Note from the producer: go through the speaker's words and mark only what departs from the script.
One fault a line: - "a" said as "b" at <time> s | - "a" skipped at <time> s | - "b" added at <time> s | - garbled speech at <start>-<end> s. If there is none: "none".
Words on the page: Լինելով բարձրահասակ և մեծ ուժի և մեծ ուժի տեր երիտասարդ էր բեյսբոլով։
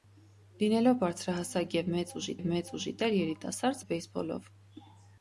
none